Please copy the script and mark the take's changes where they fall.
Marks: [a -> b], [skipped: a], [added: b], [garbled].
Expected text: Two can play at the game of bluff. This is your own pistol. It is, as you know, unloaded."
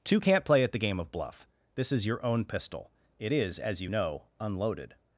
Two [can -> can't] play at the game of bluff. This is your own pistol. It is, as you know, unloaded."